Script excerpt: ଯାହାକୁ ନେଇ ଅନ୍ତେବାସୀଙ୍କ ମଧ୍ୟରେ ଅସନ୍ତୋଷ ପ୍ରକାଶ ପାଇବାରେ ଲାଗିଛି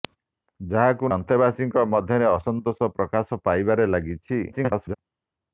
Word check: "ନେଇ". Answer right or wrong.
wrong